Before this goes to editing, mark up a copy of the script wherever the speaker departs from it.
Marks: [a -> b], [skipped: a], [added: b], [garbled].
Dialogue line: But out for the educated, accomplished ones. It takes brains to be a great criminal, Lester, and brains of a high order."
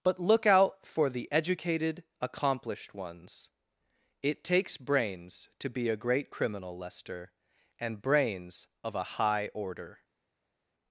But [added: look] out for the educated, accomplished ones. It takes brains to be a great criminal, Lester, and brains of a high order."